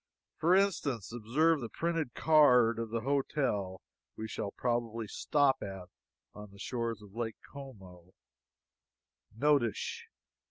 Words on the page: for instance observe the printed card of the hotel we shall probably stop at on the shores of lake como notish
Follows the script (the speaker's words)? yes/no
yes